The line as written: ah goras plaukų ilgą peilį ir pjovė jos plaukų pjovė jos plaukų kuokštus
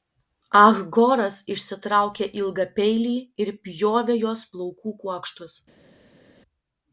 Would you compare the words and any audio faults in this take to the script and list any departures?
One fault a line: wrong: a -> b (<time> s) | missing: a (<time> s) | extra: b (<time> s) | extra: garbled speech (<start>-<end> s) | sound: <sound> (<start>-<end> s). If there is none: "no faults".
wrong: plaukų -> išsitraukė (1.6 s)
missing: pjovė jos plaukų (5.0 s)